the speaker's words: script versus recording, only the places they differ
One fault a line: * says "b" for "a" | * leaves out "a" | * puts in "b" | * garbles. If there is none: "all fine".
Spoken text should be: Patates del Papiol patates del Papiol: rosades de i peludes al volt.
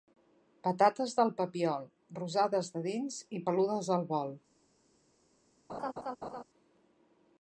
* leaves out "patates del Papiol"
* puts in "dins"